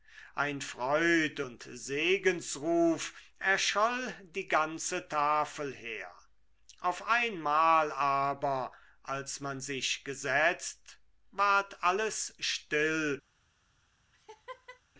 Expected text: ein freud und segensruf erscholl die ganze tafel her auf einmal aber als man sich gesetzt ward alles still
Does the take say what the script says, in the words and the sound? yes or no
no